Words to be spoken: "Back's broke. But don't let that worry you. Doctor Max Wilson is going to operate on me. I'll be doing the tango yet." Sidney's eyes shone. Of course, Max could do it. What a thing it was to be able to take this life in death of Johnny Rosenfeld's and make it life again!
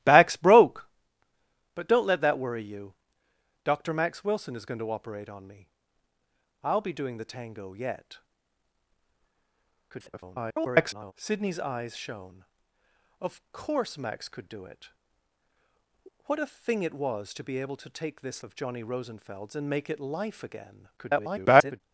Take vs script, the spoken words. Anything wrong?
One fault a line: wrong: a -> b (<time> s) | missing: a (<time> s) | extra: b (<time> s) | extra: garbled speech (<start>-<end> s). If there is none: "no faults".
extra: garbled speech (9.9-11.1 s)
missing: life in death (18.4 s)
extra: garbled speech (21.0-21.8 s)